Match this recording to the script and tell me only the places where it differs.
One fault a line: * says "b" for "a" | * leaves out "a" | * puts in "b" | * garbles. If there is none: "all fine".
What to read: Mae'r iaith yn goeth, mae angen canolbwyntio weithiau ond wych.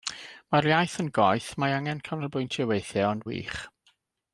all fine